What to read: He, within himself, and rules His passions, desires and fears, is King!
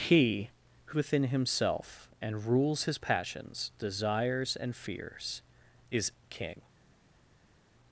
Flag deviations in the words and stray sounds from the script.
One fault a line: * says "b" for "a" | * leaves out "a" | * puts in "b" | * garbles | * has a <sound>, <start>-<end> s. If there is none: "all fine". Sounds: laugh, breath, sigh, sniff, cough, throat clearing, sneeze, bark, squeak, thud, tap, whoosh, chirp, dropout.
all fine